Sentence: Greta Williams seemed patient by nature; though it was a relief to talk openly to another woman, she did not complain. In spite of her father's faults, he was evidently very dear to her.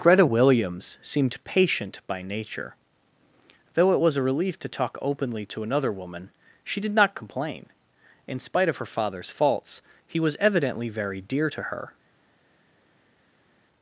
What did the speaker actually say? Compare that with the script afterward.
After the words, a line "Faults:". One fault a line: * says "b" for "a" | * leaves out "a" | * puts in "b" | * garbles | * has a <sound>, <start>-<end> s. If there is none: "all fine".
Greta Williams seemed patient by nature; though it was a relief to talk openly to another woman, she did not complain. In spite of her father's faults, he was evidently very dear to her.
Faults:
all fine